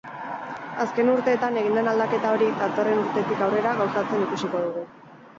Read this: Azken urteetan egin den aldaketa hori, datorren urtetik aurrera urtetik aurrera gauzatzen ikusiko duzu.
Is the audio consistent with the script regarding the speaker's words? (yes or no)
no